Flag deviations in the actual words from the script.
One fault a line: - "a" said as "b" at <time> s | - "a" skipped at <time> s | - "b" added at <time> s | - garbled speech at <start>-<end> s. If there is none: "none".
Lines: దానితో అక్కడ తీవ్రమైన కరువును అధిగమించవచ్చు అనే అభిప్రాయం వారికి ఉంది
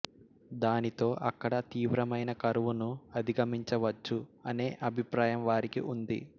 none